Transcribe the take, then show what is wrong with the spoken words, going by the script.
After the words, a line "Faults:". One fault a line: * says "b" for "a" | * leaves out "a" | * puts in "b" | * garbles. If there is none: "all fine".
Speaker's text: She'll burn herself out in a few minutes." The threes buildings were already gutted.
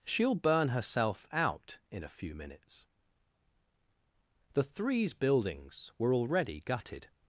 She'll burn herself out in a few minutes." The threes buildings were already gutted.
Faults:
all fine